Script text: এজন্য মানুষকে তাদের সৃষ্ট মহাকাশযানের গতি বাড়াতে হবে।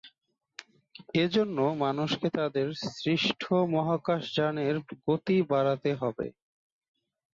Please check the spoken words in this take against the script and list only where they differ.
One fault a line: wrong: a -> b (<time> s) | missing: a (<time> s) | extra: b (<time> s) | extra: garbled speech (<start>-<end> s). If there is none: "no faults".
no faults